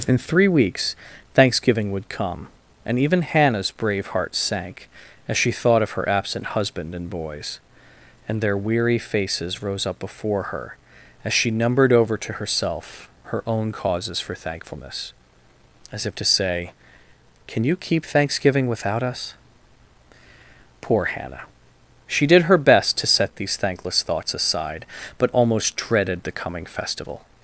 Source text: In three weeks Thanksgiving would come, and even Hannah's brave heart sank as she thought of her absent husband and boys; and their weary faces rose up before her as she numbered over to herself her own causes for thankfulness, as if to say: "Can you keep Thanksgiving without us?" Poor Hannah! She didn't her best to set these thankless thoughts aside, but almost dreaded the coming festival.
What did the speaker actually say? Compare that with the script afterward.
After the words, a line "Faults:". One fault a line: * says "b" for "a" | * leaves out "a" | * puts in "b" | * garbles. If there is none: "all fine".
In three weeks Thanksgiving would come, and even Hannah's brave heart sank as she thought of her absent husband and boys; and their weary faces rose up before her as she numbered over to herself her own causes for thankfulness, as if to say: "Can you keep Thanksgiving without us?" Poor Hannah! She did her best to set these thankless thoughts aside, but almost dreaded the coming festival.
Faults:
* says "did" for "didn't"